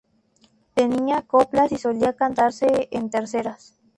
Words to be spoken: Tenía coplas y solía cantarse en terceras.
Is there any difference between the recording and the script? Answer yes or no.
no